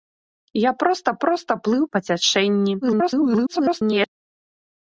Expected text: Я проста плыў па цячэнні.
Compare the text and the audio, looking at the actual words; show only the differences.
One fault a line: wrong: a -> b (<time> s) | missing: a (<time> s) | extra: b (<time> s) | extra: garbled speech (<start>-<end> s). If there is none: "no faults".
extra: проста (1.2 s)
extra: garbled speech (2.8-4.1 s)